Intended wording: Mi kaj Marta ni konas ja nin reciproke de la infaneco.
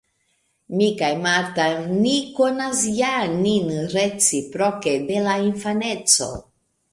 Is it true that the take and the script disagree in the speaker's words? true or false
false